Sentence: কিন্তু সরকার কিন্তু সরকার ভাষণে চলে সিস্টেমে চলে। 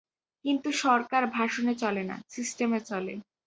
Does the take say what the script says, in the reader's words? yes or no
no